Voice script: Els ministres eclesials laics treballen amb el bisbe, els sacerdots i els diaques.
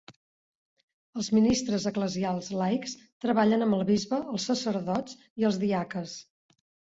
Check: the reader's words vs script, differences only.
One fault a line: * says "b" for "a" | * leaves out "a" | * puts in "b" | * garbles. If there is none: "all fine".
all fine